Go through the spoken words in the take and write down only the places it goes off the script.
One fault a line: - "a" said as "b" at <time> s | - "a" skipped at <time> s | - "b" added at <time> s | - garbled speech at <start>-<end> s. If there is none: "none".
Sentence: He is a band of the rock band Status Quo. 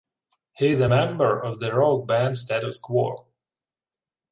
- "band" said as "member" at 0.8 s